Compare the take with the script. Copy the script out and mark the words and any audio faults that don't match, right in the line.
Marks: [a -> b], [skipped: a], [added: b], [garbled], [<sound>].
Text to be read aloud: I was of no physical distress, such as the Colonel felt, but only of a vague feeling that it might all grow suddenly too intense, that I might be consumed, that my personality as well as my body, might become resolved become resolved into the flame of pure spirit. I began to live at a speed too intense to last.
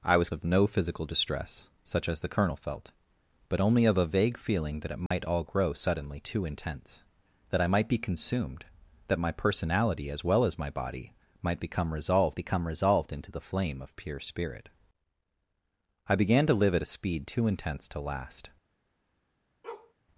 I was of no physical distress, such as the Colonel felt, but only of a vague feeling that it might [dropout] all grow suddenly too intense, that I might be consumed, that my personality as well as my body, might become resolved become resolved into the flame of pure spirit. I began to live at a speed too intense to last. [bark]